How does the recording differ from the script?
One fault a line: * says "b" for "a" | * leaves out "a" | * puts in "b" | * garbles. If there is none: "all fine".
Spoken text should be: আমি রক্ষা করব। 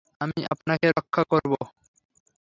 * puts in "আপনাকে"